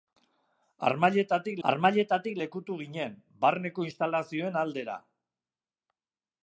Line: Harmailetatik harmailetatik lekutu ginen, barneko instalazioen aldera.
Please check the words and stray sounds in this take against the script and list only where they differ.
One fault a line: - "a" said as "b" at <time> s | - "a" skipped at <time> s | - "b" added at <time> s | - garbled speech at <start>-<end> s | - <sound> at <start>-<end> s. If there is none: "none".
none